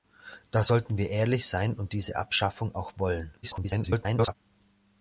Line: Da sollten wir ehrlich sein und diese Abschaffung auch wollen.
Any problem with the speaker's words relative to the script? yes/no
yes